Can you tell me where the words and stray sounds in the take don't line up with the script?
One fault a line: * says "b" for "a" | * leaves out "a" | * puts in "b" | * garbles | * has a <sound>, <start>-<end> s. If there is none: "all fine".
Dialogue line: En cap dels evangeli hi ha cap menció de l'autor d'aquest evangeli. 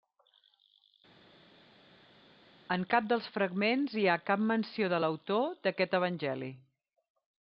* says "fragments" for "evangeli"